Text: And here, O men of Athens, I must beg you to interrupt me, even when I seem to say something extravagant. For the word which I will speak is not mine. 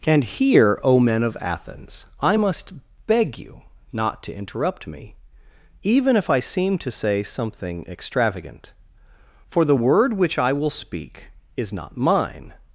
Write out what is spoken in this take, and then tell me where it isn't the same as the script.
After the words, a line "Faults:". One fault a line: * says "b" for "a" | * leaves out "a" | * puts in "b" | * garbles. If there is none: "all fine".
And here, O men of Athens, I must beg you not to interrupt me, even if I seem to say something extravagant. For the word which I will speak is not mine.
Faults:
* puts in "not"
* says "if" for "when"